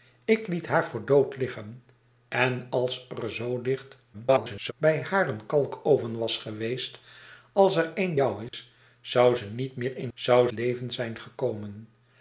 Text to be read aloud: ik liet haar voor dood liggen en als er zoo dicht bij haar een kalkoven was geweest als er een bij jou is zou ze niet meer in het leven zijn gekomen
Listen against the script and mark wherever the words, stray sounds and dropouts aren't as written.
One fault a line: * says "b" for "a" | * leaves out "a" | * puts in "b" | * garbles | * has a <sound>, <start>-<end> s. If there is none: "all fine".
* garbles
* leaves out "bij"
* has a dropout, 8.5-8.5 s
* says "zou" for "het"